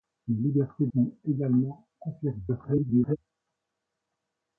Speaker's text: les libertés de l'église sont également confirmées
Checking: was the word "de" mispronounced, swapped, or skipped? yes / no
yes